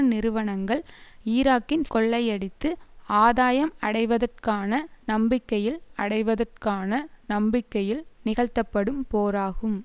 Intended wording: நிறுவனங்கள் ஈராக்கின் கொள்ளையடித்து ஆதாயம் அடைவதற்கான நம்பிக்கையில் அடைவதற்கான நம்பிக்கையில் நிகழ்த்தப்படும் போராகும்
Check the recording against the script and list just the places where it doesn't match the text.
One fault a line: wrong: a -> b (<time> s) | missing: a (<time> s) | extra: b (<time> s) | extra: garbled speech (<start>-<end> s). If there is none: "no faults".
no faults